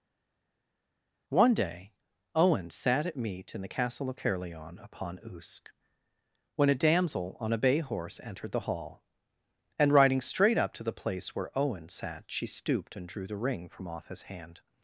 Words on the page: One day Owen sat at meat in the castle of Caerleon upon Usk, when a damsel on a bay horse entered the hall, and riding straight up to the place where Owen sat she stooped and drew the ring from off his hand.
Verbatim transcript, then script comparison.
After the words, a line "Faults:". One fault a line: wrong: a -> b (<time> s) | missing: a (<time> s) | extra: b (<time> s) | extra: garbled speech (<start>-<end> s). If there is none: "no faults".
One day Owen sat at meat in the castle of Caerleon upon Usk, when a damsel on a bay horse entered the hall, and riding straight up to the place where Owen sat she stooped and drew the ring from off his hand.
Faults:
no faults